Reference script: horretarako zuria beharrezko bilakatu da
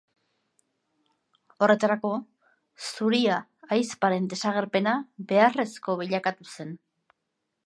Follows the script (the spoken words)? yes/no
no